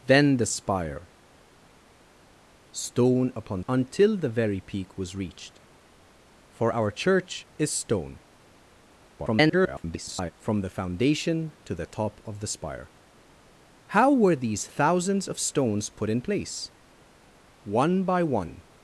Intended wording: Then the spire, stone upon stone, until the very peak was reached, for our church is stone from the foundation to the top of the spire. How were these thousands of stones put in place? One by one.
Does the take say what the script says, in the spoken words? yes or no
no